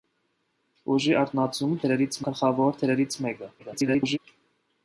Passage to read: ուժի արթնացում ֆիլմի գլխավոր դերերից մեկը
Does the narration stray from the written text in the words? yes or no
yes